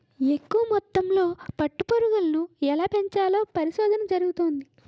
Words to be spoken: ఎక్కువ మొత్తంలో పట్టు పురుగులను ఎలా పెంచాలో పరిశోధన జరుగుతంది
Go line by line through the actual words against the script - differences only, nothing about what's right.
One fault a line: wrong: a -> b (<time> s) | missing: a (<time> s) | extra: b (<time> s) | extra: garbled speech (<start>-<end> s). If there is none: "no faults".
no faults